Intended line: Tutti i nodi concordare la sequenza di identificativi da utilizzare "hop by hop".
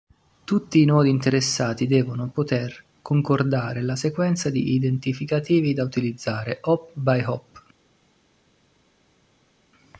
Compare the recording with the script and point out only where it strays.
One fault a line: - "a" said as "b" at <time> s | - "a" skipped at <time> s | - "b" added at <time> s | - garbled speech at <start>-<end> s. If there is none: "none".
- "interessati devono poter" added at 1.1 s